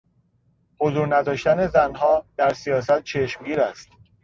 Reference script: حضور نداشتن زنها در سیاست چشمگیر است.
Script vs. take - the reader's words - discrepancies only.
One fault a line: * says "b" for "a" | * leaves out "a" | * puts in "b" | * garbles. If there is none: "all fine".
all fine